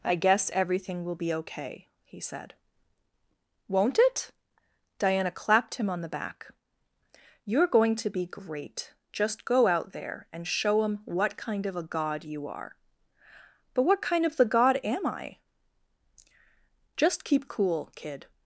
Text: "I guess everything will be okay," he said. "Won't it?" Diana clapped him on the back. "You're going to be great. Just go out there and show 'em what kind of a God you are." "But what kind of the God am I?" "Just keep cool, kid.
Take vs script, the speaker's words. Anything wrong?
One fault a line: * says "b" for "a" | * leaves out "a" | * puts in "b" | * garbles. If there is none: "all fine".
all fine